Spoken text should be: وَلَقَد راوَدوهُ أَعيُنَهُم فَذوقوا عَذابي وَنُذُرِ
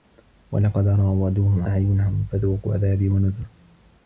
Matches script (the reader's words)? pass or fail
pass